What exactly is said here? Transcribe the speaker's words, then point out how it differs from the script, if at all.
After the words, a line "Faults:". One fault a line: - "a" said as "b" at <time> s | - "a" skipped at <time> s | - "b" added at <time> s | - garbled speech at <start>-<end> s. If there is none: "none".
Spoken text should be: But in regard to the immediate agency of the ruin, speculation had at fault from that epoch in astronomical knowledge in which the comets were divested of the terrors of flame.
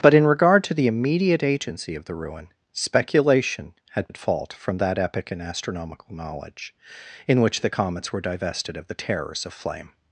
But in regard to the immediate agency of the ruin, speculation had at fault from that epoch in astronomical knowledge in which the comets were divested of the terrors of flame.
Faults:
none